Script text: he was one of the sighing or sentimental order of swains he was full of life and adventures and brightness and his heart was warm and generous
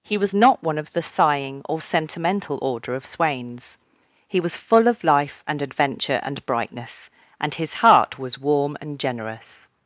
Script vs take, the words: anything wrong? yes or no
yes